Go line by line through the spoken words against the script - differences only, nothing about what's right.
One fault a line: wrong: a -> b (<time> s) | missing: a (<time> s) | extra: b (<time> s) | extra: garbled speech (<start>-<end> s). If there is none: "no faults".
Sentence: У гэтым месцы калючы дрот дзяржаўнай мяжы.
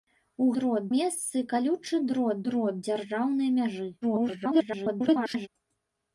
wrong: гэтым -> дрот (0.6 s)
extra: дрот (2.5 s)
extra: garbled speech (4.0-5.5 s)